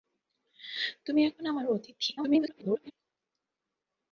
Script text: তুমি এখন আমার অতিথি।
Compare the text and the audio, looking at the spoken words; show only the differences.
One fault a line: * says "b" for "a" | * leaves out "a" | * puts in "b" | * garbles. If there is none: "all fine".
* garbles